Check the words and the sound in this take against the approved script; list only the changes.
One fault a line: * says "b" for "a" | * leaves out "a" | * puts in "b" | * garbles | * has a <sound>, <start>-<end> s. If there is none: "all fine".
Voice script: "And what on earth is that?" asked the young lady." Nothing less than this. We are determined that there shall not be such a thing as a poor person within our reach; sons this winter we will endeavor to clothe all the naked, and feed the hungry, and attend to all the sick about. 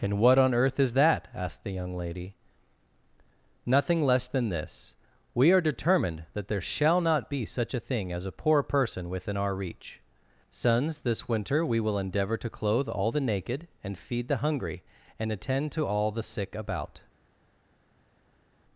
all fine